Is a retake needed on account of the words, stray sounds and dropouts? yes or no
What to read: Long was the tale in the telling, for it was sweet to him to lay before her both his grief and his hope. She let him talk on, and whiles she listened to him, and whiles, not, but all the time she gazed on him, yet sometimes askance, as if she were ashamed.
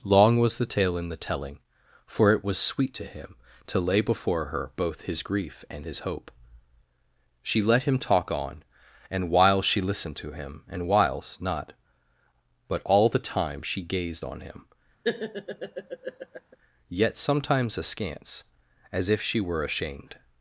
yes